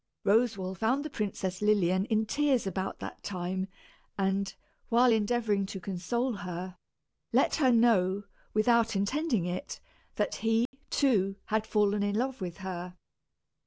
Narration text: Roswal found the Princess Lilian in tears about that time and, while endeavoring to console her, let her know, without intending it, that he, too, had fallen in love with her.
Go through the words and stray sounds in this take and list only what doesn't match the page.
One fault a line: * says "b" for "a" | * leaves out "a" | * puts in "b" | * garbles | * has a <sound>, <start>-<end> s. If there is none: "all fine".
* has a dropout, 10.7-10.7 s